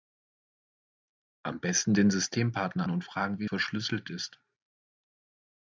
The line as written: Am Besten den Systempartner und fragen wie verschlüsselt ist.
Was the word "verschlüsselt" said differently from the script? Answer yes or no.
no